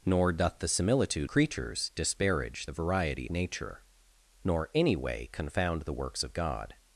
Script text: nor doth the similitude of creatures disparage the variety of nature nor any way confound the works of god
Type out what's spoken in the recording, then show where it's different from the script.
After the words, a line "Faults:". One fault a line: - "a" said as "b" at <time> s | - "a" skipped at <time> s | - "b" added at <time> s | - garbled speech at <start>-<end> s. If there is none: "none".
nor doth the similitude creatures disparage the variety nature nor any way confound the works of god
Faults:
- "of" skipped at 1.3 s
- "of" skipped at 3.3 s